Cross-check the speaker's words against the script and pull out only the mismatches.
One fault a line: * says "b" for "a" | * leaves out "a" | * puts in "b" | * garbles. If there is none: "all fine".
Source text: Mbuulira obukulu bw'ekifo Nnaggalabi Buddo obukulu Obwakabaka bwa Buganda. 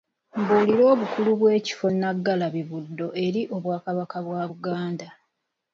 * says "eri" for "obukulu"